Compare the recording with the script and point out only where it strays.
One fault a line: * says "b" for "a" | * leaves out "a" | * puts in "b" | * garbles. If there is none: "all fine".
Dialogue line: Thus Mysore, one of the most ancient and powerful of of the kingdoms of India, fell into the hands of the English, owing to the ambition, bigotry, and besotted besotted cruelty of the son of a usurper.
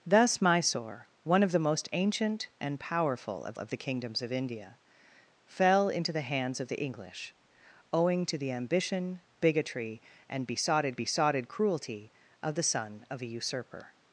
all fine